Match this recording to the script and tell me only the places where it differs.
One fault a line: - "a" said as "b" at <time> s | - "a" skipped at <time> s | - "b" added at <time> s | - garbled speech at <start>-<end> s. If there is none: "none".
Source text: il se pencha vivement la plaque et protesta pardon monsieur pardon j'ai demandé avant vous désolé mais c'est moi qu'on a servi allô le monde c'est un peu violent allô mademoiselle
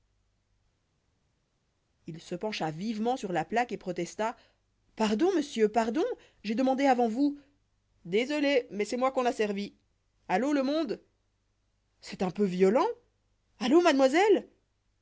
- "sur" added at 3.1 s